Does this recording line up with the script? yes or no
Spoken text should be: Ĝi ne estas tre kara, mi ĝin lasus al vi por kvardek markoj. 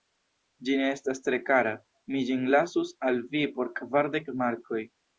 yes